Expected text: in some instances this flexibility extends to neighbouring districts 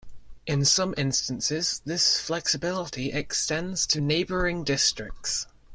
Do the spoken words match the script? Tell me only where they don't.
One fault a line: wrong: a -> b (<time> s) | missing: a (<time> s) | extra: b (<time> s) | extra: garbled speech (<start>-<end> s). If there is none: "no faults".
no faults